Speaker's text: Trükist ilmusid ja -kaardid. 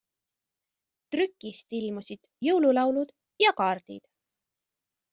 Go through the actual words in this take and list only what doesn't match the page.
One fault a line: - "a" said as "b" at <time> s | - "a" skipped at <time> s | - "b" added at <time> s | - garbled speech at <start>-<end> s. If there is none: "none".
- "jõululaulud" added at 2.5 s